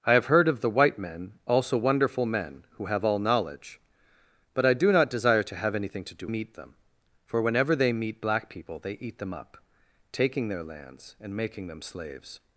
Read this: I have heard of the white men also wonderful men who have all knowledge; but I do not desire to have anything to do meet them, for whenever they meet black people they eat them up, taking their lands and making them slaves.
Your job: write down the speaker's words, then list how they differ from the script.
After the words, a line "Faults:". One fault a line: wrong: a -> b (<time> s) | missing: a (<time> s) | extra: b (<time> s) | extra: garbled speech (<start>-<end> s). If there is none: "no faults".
I have heard of the white men also wonderful men who have all knowledge; but I do not desire to have anything to do meet them, for whenever they meet black people they eat them up, taking their lands and making them slaves.
Faults:
no faults